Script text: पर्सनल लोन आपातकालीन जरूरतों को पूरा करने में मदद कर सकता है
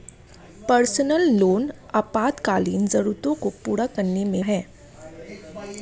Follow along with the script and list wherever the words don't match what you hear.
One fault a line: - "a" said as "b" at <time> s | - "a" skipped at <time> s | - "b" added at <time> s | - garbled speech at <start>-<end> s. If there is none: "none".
- "मदद कर सकता" skipped at 4.4 s